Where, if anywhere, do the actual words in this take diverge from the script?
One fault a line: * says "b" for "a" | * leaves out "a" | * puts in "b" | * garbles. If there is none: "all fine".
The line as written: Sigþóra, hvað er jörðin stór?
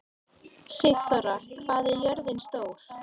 all fine